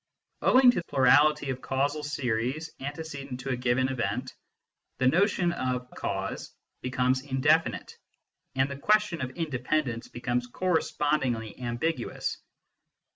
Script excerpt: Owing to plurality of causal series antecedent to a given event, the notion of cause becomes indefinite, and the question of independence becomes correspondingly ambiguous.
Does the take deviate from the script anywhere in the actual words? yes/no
no